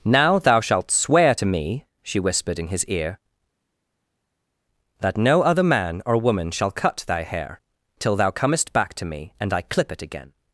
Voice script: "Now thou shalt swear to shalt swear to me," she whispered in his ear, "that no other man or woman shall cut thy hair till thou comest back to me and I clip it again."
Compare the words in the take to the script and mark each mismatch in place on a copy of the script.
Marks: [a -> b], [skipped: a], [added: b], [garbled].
"Now thou shalt swear to [skipped: shalt swear to] me," she whispered in his ear, "that no other man or woman shall cut thy hair till thou comest back to me and I clip it again."